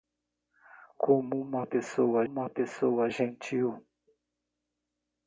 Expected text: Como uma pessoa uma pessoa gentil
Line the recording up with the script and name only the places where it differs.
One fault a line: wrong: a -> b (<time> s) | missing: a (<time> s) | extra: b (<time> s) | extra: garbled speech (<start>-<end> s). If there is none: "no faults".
no faults